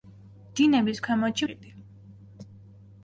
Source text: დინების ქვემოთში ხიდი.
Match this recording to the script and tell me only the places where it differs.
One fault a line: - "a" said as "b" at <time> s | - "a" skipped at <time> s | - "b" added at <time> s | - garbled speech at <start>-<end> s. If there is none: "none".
none